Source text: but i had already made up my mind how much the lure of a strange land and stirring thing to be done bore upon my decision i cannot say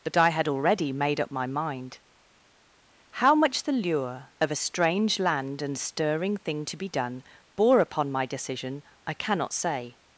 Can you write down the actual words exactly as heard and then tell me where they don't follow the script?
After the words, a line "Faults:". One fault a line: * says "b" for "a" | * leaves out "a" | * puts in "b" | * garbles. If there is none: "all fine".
but i had already made up my mind how much the lure of a strange land and stirring thing to be done bore upon my decision i cannot say
Faults:
all fine